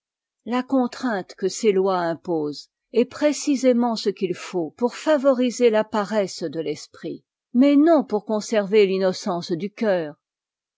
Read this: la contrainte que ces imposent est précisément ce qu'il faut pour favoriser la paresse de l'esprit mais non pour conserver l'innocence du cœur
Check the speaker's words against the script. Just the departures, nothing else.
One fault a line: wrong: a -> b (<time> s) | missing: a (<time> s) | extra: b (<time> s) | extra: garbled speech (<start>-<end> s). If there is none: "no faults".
extra: lois (1.7 s)